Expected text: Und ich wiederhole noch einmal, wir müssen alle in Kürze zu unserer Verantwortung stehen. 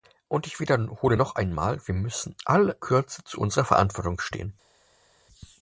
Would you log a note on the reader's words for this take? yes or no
yes